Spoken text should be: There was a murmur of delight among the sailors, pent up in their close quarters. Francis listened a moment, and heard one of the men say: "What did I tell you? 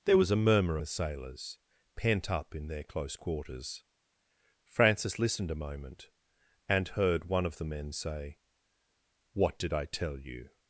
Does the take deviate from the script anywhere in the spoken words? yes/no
yes